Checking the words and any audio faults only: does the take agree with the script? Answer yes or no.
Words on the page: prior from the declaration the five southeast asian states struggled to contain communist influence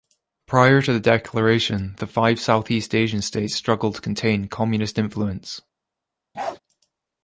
no